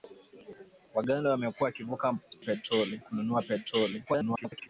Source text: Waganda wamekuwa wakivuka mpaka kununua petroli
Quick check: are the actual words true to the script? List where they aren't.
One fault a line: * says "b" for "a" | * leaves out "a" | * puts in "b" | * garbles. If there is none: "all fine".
* says "petroli" for "mpaka"
* garbles